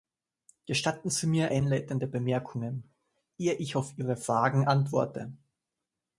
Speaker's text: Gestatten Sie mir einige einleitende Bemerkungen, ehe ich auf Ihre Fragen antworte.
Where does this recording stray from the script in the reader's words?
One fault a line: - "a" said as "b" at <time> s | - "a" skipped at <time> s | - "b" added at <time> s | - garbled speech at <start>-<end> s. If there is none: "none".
- "einige" skipped at 1.5 s